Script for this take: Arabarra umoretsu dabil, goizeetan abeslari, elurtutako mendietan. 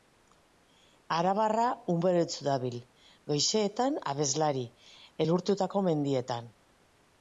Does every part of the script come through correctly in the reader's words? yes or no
yes